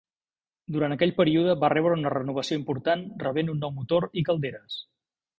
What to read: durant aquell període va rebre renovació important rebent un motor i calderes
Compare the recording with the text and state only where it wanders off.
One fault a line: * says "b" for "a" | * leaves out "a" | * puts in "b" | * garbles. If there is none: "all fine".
* puts in "una"
* puts in "nou"